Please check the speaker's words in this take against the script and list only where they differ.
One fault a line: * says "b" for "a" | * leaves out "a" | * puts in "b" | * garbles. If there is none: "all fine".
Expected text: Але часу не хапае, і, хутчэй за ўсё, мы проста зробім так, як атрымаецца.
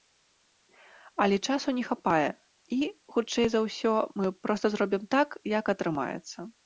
all fine